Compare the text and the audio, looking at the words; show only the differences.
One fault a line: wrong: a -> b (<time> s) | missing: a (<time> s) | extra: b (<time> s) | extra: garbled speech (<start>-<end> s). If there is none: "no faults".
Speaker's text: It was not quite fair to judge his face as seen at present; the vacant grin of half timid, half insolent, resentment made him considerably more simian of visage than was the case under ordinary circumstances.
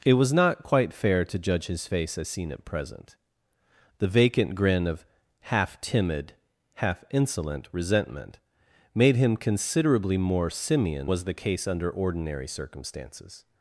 missing: of visage than (11.1 s)